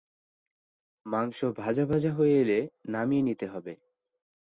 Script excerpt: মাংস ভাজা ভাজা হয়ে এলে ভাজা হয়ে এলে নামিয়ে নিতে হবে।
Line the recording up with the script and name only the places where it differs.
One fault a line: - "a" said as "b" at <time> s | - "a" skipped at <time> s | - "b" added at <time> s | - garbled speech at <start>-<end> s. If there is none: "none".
- "ভাজা হয়ে এলে" skipped at 2.6 s